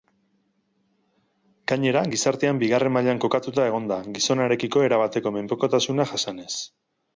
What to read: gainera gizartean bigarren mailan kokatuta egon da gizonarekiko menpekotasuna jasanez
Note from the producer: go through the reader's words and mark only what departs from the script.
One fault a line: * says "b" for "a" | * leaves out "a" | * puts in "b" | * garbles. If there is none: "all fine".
* puts in "erabateko"